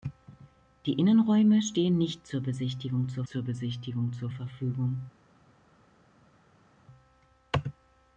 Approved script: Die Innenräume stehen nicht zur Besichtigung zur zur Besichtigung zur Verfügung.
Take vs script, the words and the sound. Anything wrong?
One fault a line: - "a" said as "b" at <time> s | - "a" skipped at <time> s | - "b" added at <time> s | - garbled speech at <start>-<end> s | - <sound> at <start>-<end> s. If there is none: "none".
none